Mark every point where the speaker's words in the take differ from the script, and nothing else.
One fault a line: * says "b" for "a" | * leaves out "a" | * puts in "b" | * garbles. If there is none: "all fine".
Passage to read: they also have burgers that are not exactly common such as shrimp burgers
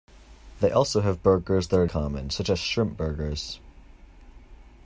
* leaves out "not exactly"